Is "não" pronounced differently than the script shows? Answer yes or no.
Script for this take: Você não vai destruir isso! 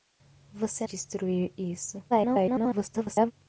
yes